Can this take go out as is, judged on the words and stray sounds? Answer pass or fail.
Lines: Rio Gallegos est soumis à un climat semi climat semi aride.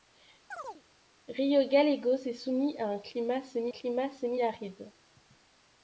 fail